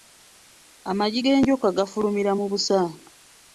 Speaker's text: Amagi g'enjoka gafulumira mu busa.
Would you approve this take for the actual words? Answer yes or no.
yes